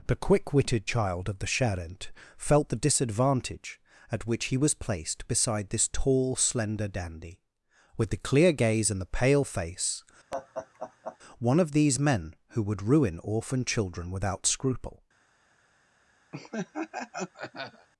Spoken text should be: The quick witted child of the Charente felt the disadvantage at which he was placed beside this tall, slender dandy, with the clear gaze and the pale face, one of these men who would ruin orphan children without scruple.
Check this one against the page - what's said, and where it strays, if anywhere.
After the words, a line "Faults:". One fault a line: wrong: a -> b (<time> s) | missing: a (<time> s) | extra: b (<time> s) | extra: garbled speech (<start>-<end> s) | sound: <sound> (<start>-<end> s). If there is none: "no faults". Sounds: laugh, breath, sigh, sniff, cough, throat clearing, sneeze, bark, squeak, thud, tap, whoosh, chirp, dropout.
The quick witted child of the Charente felt the disadvantage at which he was placed beside this tall, slender dandy, with the clear gaze and the pale face, one of these men who would ruin orphan children without scruple.
Faults:
sound: laugh (10.3-11.2 s)
sound: laugh (16.3-17.9 s)